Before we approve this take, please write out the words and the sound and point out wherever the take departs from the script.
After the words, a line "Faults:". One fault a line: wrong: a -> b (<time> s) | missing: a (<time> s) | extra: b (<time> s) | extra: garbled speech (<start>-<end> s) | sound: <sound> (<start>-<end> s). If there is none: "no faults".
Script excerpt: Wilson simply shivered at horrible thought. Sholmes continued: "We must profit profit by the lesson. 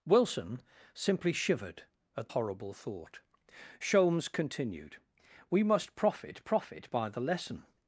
Wilson simply shivered at horrible thought. Sholmes continued: "We must profit profit by the lesson.
Faults:
no faults